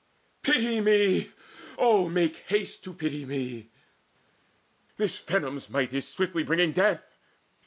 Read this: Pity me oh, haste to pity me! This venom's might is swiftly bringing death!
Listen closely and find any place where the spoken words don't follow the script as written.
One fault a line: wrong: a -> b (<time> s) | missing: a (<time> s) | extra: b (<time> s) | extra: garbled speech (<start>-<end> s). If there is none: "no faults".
extra: make (2.0 s)